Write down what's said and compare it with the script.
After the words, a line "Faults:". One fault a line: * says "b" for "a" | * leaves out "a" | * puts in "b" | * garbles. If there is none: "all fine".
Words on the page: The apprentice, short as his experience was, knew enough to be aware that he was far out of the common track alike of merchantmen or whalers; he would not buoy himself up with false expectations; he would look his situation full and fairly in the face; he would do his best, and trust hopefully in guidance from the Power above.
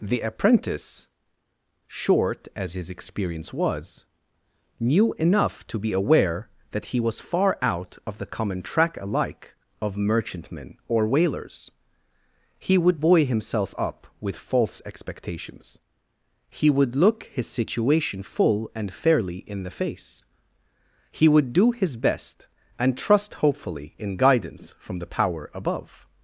The apprentice, short as his experience was, knew enough to be aware that he was far out of the common track alike of merchantmen or whalers; he would buoy himself up with false expectations; he would look his situation full and fairly in the face; he would do his best, and trust hopefully in guidance from the Power above.
Faults:
* leaves out "not"